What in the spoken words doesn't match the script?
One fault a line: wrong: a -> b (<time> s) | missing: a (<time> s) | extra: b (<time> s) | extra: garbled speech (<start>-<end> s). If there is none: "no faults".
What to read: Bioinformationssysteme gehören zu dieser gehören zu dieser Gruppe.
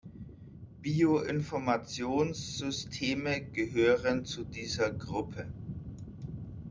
missing: gehören zu dieser (4.9 s)